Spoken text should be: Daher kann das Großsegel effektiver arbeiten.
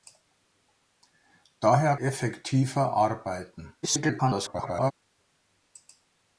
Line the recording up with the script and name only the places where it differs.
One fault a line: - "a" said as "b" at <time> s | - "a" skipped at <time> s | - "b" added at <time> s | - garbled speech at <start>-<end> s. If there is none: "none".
- "kann das Großsegel" skipped at 1.9 s
- garbled speech at 3.8-4.9 s